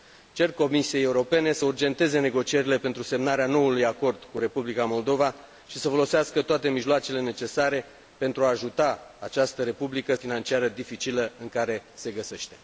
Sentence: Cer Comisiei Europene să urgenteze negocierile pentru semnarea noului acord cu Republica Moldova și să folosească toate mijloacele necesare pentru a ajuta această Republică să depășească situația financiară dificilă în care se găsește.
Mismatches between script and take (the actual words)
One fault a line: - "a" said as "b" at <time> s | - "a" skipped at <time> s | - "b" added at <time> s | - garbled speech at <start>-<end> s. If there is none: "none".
- "să depășească situația" skipped at 10.1 s